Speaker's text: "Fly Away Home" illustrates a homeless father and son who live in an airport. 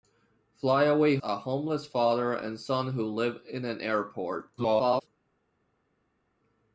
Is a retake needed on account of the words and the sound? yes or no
yes